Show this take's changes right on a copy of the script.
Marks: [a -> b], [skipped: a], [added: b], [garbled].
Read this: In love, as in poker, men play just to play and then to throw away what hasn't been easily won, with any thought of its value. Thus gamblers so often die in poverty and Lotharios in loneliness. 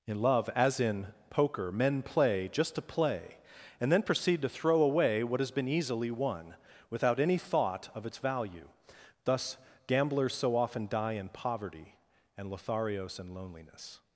In love, as in poker, men play just to play and then [added: proceed] to throw away what [hasn't -> has] been easily won, [with -> without] any thought of its value. Thus gamblers so often die in poverty and Lotharios in loneliness.